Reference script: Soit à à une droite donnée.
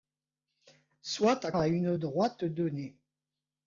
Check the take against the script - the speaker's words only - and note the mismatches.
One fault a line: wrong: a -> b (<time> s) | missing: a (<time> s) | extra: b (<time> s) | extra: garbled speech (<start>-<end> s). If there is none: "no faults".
no faults